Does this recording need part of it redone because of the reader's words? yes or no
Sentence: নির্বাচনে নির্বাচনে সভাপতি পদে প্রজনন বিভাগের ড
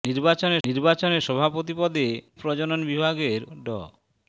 no